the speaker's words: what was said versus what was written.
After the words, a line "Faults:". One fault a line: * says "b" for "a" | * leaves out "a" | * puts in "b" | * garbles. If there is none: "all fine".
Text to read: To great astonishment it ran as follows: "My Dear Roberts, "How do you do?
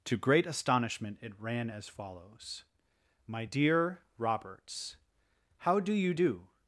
To great astonishment it ran as follows: "My Dear Roberts, "How do you do?
Faults:
all fine